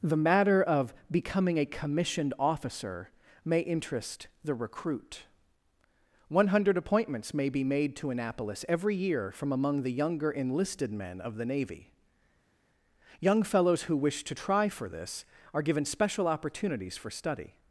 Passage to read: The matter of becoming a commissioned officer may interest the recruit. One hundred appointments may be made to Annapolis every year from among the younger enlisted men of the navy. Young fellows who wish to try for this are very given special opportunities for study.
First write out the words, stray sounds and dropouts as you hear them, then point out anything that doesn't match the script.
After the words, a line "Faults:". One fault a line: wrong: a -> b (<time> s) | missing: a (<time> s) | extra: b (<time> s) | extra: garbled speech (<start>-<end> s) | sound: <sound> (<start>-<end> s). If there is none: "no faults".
The matter of becoming a commissioned officer may interest the recruit. One hundred appointments may be made to Annapolis every year from among the younger enlisted men of the navy. Young fellows who wish to try for this are given special opportunities for study.
Faults:
missing: very (15.6 s)